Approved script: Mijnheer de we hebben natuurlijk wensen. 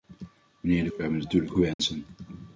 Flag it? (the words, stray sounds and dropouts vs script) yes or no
yes